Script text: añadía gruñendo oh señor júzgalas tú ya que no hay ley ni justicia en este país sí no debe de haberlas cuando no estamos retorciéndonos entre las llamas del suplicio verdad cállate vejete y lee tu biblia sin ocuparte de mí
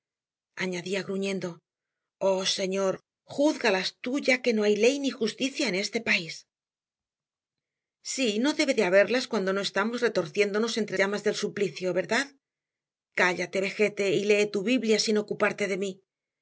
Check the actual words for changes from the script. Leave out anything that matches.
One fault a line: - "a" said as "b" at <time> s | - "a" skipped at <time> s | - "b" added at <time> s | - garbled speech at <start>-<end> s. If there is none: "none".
- "las" skipped at 11.0 s